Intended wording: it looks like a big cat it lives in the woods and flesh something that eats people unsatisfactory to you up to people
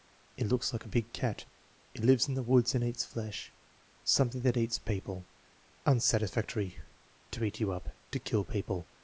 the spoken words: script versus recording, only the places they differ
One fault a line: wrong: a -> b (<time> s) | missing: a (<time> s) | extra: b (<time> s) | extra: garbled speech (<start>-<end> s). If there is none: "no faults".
extra: eats (2.8 s)
extra: eat (7.4 s)
extra: kill (8.2 s)